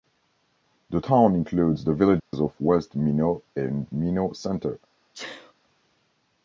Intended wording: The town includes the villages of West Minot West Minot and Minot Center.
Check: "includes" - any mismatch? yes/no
no